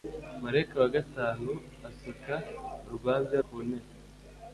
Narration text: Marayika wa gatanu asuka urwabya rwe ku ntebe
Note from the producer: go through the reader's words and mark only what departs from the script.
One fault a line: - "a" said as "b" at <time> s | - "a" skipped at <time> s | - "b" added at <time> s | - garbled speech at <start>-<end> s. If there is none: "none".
- "rwe" skipped at 3.4 s